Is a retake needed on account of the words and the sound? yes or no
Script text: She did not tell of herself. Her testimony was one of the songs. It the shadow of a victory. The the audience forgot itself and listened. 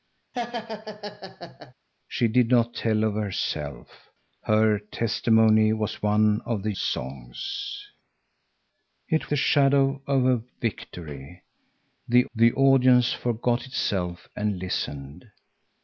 yes